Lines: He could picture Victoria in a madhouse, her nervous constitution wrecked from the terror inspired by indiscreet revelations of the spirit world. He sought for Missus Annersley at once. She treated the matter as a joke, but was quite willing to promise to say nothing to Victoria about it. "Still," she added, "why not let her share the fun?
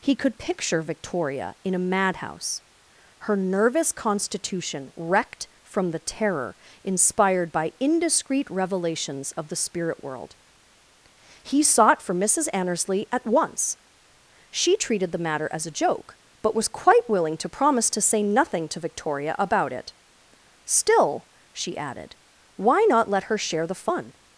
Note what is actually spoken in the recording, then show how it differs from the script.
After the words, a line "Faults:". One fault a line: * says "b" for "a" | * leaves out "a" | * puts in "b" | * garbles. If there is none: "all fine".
He could picture Victoria in a madhouse, her nervous constitution wrecked from the terror inspired by indiscreet revelations of the spirit world. He sought for Missus Annersley at once. She treated the matter as a joke, but was quite willing to promise to say nothing to Victoria about it. "Still," she added, "why not let her share the fun?
Faults:
all fine